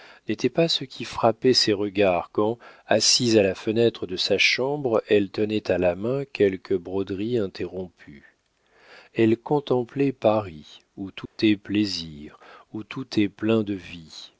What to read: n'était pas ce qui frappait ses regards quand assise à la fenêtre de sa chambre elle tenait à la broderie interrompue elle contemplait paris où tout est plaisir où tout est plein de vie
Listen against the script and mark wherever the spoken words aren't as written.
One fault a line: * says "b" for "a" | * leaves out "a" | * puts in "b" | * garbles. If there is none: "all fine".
* puts in "main quelque"